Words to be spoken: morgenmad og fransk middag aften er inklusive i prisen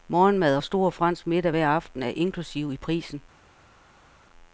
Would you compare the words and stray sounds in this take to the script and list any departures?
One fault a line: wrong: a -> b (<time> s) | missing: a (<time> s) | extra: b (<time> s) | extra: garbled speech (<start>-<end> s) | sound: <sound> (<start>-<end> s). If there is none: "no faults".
extra: stor (0.6 s)
extra: hver (1.5 s)